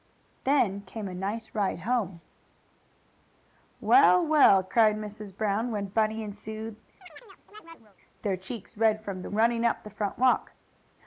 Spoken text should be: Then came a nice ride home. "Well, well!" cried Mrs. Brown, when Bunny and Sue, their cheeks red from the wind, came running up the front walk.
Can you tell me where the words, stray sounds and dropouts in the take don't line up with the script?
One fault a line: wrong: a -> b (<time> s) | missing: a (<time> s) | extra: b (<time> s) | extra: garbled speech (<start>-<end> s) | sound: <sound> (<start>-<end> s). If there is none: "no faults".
sound: chirp (7.0-8.0 s)
missing: wind came (9.3 s)